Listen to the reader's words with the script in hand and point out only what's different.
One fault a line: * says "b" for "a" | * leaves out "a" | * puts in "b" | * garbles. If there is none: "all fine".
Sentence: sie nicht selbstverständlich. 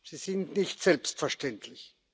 * puts in "sind"